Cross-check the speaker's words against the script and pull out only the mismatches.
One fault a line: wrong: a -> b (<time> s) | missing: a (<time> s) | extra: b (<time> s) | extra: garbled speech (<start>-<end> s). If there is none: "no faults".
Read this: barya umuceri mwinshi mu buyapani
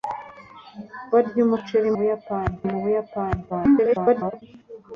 wrong: mwinshi -> buyapani (2.0 s)
extra: garbled speech (3.5-4.4 s)